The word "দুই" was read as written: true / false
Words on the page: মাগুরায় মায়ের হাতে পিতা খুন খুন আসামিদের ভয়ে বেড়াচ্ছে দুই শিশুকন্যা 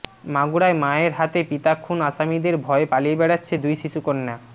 true